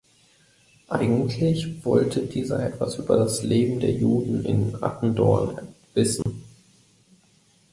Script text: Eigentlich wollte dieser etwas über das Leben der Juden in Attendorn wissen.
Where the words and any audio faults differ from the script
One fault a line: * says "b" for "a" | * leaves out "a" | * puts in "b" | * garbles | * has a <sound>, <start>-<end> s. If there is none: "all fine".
* has a dropout, 6.2-6.3 s